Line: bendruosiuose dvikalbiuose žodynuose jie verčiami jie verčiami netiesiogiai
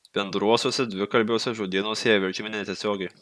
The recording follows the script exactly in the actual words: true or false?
false